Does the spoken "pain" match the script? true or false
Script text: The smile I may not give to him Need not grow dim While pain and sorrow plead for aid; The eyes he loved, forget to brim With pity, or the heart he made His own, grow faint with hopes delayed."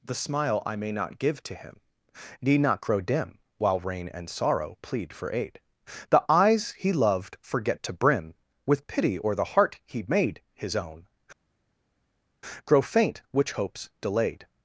false